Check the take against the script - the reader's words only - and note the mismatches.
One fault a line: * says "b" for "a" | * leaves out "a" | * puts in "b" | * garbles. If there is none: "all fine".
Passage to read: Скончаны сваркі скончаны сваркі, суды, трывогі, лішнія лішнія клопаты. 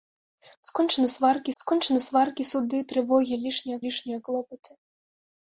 all fine